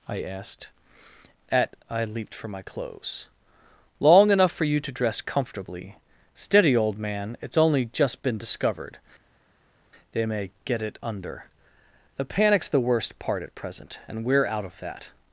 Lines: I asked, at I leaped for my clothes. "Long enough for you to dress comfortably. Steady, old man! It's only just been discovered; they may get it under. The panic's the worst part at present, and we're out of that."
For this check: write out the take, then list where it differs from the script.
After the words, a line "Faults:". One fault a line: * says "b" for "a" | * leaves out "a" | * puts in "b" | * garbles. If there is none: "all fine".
I asked, at I leaped for my clothes. "Long enough for you to dress comfortably. Steady, old man! It's only just been discovered; they may get it under. The panic's the worst part at present, and we're out of that."
Faults:
all fine